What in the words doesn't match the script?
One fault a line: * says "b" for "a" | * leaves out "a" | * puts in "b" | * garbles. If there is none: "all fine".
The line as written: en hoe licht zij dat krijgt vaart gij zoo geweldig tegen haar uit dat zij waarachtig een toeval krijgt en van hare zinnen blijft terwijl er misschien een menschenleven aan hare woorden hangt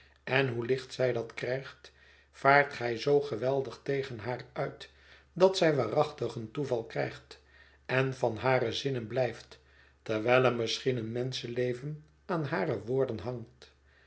all fine